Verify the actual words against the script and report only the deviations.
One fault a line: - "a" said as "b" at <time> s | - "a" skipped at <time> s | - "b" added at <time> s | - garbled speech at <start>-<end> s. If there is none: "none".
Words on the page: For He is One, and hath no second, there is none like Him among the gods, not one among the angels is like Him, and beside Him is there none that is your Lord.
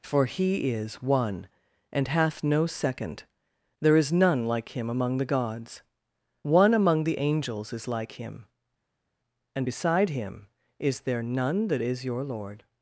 - "not" skipped at 5.8 s